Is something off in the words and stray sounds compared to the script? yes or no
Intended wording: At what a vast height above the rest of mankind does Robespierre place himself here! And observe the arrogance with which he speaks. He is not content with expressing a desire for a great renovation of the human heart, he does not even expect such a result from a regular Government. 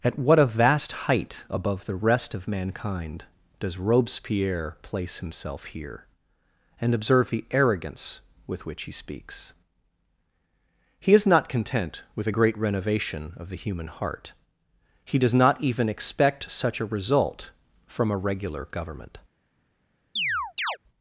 yes